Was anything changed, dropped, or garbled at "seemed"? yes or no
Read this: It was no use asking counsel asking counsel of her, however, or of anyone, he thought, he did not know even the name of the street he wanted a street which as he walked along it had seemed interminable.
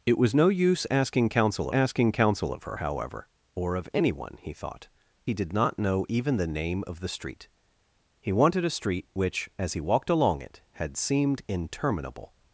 no